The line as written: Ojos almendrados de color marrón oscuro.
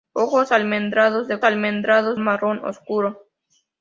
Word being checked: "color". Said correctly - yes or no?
no